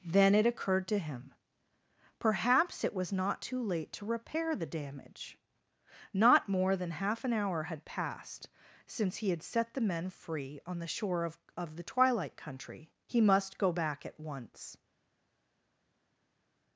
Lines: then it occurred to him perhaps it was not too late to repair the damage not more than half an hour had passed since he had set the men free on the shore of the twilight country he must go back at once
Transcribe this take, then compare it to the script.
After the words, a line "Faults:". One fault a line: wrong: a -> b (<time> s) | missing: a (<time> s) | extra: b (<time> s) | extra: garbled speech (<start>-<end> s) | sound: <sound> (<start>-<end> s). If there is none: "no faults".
then it occurred to him perhaps it was not too late to repair the damage not more than half an hour had passed since he had set the men free on the shore of of the twilight country he must go back at once
Faults:
extra: of (11.6 s)